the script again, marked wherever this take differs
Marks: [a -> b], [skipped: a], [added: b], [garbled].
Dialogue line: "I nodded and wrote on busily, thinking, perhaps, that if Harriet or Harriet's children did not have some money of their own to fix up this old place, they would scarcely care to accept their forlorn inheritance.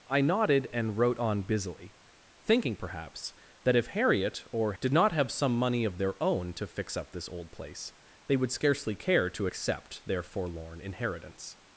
"I nodded and wrote on busily, thinking, perhaps, that if Harriet or [skipped: Harriet's children] did not have some money of their own to fix up this old place, they would scarcely care to accept their forlorn inheritance.